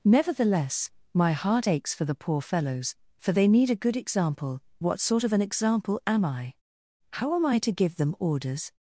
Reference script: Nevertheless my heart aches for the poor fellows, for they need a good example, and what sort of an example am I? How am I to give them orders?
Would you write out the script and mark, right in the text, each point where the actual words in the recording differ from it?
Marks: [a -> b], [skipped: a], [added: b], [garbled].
Nevertheless my heart aches for the poor fellows, for they need a good example, [skipped: and] what sort of an example am I? How am I to give them orders?